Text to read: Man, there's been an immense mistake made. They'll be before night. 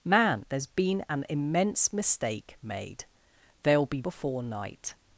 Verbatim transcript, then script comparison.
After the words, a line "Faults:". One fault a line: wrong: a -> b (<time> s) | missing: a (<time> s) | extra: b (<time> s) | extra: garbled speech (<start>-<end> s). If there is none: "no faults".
Man, there's been an immense mistake made. They'll be before night.
Faults:
no faults